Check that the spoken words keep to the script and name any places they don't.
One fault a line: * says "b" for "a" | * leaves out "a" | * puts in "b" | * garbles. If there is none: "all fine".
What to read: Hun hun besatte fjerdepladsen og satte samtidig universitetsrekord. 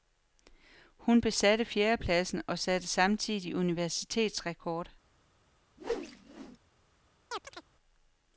* leaves out "hun"